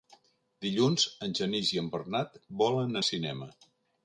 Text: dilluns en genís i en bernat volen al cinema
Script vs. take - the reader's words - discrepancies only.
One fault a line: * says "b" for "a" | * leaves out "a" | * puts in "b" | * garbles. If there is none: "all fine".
all fine